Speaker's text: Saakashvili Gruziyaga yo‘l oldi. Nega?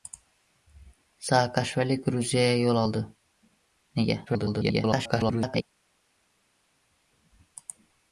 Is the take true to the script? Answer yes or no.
no